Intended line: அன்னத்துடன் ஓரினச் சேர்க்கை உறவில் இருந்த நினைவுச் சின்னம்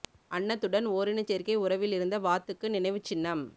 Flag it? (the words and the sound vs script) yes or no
yes